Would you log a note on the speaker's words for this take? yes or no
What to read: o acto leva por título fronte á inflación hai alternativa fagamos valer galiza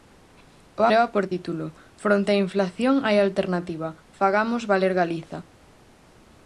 yes